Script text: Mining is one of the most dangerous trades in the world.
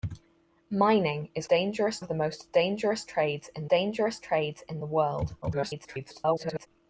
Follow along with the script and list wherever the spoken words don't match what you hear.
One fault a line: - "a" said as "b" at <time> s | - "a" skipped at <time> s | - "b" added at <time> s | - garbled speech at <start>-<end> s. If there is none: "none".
- "one" said as "dangerous" at 1.5 s
- "dangerous trades in" added at 3.7 s
- garbled speech at 5.4-6.7 s